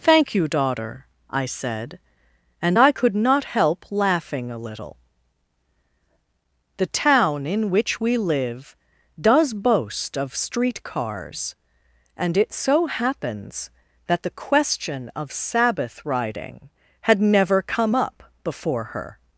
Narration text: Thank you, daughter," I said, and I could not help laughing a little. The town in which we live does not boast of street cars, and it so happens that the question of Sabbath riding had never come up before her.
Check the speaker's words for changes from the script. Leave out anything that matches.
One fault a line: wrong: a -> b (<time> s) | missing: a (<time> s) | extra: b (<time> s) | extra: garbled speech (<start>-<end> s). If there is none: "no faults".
missing: not (9.5 s)